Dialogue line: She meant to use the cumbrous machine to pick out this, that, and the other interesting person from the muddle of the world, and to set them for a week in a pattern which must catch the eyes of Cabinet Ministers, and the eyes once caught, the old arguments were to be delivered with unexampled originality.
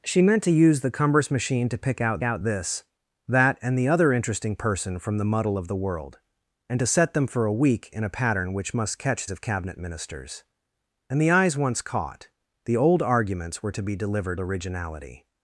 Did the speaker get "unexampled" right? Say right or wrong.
wrong